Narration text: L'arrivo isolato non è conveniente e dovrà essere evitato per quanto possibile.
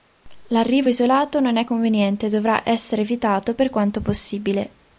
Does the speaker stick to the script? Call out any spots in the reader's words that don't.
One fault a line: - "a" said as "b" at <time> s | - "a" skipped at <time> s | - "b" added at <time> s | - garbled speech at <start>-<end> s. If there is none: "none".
none